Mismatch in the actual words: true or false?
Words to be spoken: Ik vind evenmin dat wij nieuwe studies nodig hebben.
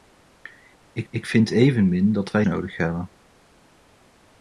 true